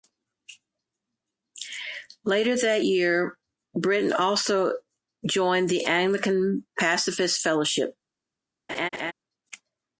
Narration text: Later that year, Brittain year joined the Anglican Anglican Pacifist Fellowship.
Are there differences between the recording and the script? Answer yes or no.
yes